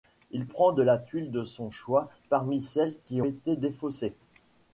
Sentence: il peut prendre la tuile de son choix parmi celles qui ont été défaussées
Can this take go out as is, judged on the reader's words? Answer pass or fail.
fail